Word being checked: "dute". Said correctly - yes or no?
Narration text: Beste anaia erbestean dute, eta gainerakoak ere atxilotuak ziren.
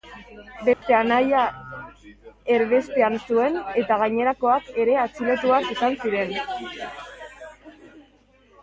no